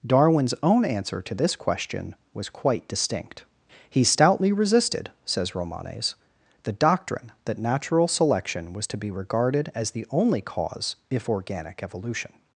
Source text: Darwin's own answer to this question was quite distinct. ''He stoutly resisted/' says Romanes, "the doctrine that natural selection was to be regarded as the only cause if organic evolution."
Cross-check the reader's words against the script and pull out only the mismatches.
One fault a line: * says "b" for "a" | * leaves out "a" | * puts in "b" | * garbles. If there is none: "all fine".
all fine